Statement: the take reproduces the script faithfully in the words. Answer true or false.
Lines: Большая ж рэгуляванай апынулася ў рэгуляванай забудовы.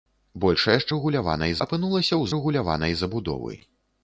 true